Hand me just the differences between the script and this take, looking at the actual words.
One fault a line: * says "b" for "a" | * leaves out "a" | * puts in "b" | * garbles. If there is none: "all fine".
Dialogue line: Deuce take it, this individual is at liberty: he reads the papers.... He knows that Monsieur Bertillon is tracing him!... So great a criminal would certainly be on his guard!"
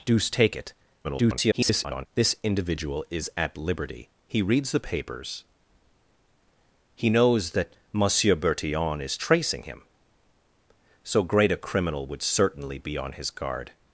* garbles